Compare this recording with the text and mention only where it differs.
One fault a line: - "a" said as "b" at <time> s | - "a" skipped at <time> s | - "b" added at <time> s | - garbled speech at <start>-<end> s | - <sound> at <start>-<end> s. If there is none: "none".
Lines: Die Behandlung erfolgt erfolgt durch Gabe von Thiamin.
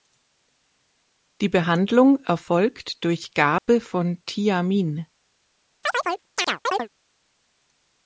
- "erfolgt" skipped at 3.0 s
- dropout at 3.6-3.7 s
- chirp at 5.8-6.9 s